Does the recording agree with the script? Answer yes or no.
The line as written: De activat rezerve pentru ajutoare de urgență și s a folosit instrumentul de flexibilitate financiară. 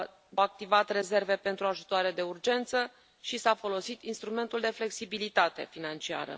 yes